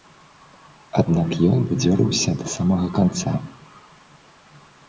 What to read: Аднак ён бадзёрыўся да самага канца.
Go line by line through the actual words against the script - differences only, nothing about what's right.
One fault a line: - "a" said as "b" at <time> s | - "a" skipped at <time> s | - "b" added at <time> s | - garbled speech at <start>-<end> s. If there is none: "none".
none